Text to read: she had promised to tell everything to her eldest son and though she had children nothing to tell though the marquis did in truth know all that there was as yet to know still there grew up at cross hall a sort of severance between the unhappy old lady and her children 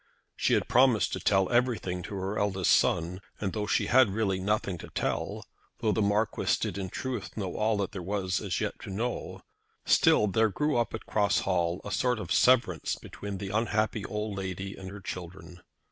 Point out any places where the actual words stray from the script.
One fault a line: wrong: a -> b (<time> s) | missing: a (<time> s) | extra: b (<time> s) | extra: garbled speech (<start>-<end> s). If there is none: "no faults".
wrong: children -> really (4.2 s)